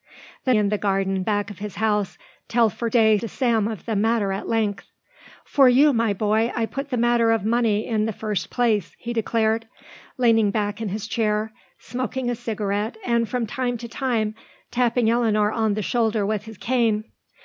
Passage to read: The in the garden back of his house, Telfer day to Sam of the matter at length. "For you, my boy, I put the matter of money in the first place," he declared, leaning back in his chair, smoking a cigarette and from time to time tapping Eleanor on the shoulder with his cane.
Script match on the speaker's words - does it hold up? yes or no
yes